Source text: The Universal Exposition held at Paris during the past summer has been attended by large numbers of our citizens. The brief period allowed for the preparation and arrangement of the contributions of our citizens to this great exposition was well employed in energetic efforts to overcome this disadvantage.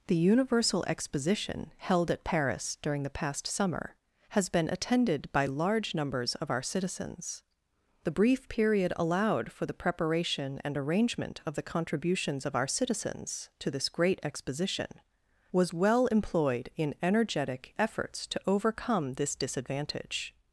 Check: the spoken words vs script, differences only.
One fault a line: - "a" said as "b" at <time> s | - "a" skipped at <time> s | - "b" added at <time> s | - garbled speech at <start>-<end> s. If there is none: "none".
none